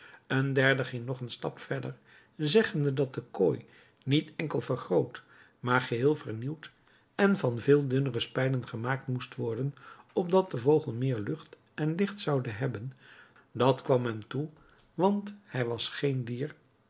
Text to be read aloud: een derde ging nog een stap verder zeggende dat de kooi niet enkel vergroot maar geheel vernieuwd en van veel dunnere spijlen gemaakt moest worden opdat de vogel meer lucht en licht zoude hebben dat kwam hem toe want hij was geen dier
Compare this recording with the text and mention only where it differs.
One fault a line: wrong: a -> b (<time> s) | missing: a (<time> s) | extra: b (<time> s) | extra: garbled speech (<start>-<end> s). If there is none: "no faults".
no faults